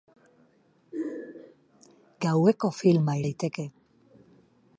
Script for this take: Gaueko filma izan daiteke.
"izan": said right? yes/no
no